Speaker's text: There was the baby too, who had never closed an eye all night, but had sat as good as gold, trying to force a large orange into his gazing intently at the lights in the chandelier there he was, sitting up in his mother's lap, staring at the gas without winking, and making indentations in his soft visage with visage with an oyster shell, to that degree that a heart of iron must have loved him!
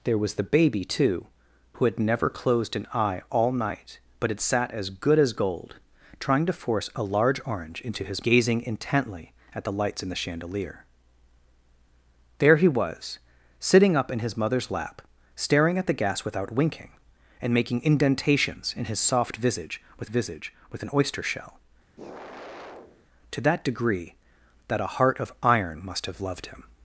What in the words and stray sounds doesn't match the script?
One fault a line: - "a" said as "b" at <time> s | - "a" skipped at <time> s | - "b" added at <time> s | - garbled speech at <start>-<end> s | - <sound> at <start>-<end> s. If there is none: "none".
- sigh at 22.0-23.1 s